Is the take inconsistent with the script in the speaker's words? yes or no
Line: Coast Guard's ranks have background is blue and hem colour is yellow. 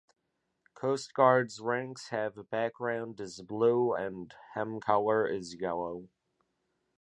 no